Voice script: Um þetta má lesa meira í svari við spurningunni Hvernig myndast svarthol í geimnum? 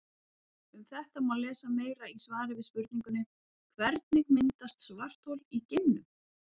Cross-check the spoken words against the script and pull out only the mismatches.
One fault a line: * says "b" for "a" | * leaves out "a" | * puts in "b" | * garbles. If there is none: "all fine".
all fine